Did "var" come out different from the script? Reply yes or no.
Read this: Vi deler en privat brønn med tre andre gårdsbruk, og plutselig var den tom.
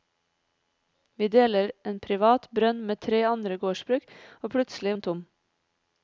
yes